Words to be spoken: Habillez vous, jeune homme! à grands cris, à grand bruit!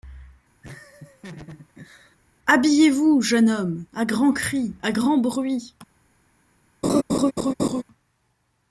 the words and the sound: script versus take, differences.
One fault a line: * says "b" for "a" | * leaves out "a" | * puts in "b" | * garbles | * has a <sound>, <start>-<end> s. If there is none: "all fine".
* has a laugh, 0.6-2.2 s
* has a laugh, 6.8-7.8 s